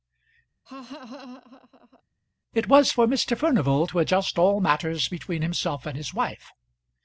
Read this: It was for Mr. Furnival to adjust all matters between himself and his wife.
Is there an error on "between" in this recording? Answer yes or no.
no